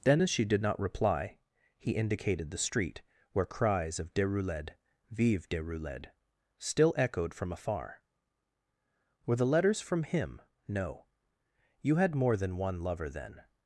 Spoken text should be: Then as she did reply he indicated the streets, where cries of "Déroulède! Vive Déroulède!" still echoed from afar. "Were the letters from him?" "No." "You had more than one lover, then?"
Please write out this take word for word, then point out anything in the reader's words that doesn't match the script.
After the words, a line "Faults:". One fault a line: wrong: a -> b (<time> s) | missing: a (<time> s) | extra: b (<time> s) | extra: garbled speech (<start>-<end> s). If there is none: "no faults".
Then as she did not reply he indicated the street, where cries of "Déroulède! Vive Déroulède!" still echoed from afar. "Were the letters from him?" "No." "You had more than one lover, then?"
Faults:
extra: not (0.6 s)
wrong: streets -> street (2.6 s)